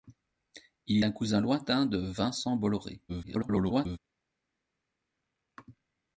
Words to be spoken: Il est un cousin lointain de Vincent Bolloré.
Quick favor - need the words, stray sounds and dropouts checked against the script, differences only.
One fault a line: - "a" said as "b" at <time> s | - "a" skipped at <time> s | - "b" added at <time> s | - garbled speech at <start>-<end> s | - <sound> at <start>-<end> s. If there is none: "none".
- "est" skipped at 1.0 s
- garbled speech at 3.1-4.0 s